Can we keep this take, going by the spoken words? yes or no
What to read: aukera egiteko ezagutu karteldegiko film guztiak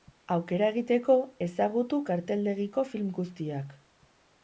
yes